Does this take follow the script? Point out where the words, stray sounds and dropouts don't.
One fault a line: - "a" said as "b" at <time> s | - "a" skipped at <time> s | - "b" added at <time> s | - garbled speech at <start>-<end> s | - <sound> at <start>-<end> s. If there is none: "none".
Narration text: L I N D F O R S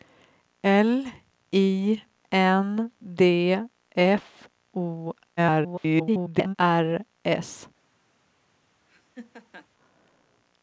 - garbled speech at 5.4-6.6 s
- laugh at 8.9-9.7 s